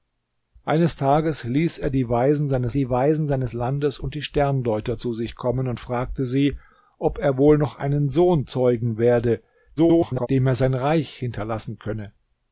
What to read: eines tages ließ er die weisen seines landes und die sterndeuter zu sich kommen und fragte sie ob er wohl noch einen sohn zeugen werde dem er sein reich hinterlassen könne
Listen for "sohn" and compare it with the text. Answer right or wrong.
right